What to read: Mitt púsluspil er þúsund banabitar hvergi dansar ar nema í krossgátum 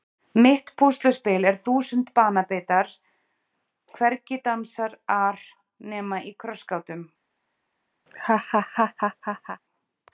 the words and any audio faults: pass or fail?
fail